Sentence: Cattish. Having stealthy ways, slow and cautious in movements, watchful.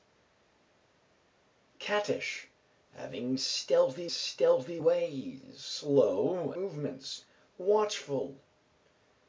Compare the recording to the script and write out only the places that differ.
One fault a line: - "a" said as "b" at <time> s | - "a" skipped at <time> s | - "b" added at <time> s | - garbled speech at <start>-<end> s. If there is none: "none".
- "stealthy" added at 4.1 s
- "and cautious in" skipped at 6.5 s